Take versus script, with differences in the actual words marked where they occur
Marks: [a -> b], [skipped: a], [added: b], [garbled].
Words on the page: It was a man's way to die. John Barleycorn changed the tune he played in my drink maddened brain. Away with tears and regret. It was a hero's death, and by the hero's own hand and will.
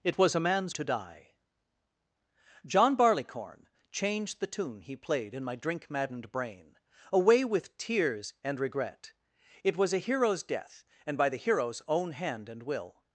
It was a man's [skipped: way] to die. John Barleycorn changed the tune he played in my drink maddened brain. Away with tears and regret. It was a hero's death, and by the hero's own hand and will.